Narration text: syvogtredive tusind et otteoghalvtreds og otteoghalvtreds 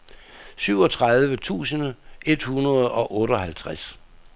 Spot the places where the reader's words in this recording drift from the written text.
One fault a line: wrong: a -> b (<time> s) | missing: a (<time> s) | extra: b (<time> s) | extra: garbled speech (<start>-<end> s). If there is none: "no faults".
wrong: otteoghalvtreds -> hundrede (2.4 s)